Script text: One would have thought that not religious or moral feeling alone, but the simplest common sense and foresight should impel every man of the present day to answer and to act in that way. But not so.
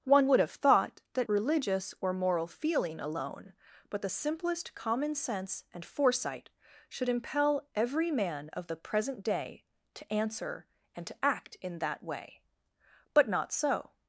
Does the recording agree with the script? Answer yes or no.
no